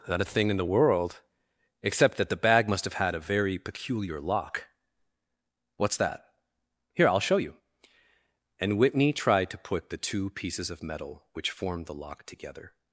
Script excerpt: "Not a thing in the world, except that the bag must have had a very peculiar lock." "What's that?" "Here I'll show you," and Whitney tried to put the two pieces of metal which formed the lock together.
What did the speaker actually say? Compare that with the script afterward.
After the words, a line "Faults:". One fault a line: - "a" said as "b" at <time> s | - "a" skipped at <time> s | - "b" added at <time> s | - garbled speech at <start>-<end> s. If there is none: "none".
"Not a thing in the world, except that the bag must have had a very peculiar lock." "What's that?" "Here I'll show you," and Whitney tried to put the two pieces of metal which formed the lock together.
Faults:
none